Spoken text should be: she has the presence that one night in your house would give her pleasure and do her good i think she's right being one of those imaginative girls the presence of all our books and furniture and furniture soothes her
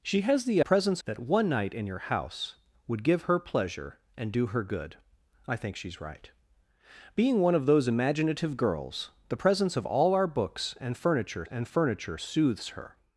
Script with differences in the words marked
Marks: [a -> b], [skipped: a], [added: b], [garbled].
she has the presence that one night in your house would give her pleasure and do her good i think she's right being one of those imaginative girls the presence of all our books and furniture and furniture soothes her